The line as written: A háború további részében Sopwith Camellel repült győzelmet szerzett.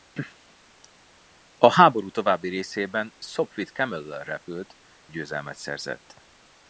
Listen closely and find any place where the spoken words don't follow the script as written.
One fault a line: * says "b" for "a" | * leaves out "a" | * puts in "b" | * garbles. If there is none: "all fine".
all fine